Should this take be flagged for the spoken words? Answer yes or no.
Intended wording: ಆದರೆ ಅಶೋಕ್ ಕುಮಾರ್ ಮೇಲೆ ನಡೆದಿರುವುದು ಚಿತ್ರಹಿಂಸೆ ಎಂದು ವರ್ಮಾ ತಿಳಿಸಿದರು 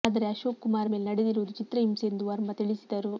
no